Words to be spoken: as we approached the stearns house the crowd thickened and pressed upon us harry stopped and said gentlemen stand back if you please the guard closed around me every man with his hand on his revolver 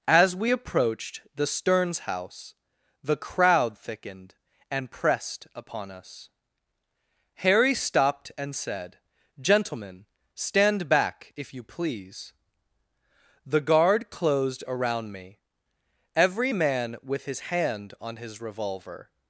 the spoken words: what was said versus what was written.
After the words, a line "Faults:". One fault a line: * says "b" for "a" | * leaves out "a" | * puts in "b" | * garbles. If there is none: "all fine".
as we approached the stearns house the crowd thickened and pressed upon us harry stopped and said gentlemen stand back if you please the guard closed around me every man with his hand on his revolver
Faults:
all fine